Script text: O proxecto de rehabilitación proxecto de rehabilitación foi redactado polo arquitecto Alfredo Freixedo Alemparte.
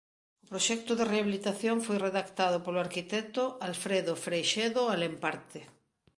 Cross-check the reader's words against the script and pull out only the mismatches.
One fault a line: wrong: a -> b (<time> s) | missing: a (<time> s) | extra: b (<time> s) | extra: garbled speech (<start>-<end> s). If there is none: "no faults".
missing: proxecto de rehabilitación (1.8 s)